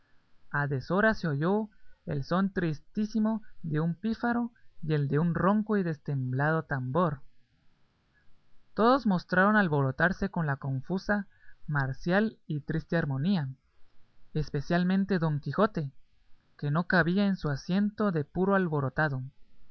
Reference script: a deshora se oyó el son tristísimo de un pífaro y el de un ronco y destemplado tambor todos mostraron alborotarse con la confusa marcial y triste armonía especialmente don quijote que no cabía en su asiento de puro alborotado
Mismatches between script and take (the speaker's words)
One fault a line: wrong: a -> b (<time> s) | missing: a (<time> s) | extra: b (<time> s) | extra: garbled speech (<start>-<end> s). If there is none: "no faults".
no faults